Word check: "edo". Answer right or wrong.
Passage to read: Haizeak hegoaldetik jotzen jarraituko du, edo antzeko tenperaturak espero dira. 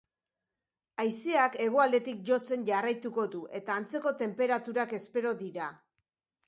wrong